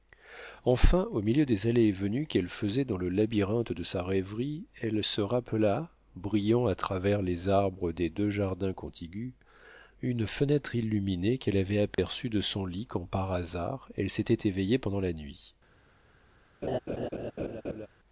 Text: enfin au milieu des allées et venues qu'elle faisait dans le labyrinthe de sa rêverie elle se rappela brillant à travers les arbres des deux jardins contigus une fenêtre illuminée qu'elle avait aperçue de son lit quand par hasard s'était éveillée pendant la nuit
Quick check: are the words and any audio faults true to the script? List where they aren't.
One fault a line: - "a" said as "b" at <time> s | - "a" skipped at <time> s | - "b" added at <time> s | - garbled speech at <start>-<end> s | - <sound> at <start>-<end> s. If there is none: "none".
- dropout at 11.9-12.0 s
- "elle" added at 14.0 s
- laugh at 16.6-17.9 s